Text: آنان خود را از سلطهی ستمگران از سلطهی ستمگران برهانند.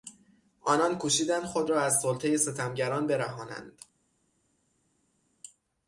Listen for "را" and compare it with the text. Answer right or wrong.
right